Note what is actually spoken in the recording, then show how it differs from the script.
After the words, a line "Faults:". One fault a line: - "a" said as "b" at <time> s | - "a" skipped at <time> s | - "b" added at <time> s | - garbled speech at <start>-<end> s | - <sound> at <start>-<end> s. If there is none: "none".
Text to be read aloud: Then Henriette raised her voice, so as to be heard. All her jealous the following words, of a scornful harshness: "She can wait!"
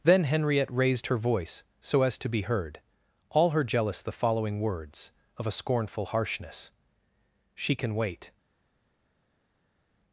Then Henriette raised her voice, so as to be heard. All her jealous the following words, of a scornful harshness: "She can wait!"
Faults:
none